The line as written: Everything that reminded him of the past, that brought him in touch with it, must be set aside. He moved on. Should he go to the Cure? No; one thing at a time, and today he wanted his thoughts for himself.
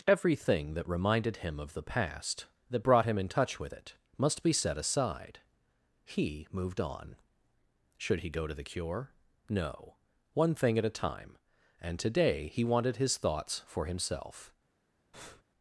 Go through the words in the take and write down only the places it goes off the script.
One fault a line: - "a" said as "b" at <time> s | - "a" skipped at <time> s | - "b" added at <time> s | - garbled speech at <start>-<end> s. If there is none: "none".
none